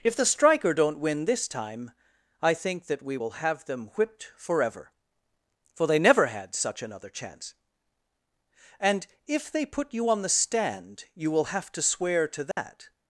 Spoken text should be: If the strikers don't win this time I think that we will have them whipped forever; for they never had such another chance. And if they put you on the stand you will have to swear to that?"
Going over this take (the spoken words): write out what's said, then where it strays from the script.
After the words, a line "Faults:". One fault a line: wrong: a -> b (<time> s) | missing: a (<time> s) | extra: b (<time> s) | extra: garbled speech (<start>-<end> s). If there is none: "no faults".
If the striker don't win this time I think that we will have them whipped forever; for they never had such another chance. And if they put you on the stand you will have to swear to that?"
Faults:
wrong: strikers -> striker (0.2 s)